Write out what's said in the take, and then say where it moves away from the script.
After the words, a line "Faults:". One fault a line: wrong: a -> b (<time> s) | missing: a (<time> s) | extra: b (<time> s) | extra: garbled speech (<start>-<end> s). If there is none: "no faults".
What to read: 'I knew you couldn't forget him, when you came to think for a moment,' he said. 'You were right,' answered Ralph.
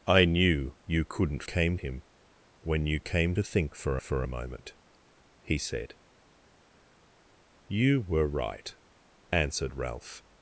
'I knew you couldn't came him, when you came to think for for a moment,' he said. 'You were right,' answered Ralph.
Faults:
wrong: forget -> came (1.4 s)
extra: for (4.0 s)